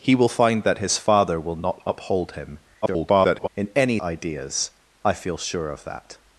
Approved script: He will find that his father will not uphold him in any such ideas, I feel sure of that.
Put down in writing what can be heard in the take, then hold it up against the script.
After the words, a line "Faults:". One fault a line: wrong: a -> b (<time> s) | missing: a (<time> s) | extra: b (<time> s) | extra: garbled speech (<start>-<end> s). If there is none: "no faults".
He will find that his father will not uphold him [garbled] in any ideas, I feel sure of that.
Faults:
extra: garbled speech (2.8-3.5 s)
missing: such (4.0 s)